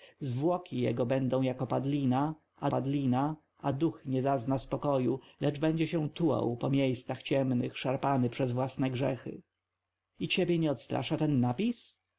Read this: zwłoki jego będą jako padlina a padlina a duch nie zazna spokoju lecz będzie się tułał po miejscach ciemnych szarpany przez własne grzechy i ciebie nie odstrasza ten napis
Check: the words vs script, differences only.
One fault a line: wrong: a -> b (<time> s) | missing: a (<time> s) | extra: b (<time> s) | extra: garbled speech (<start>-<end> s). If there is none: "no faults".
no faults